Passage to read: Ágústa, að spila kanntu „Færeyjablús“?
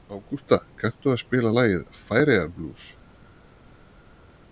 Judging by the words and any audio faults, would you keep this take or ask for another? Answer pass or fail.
fail